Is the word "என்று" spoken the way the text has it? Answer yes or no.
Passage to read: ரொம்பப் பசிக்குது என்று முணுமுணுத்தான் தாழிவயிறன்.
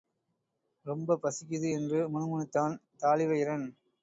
yes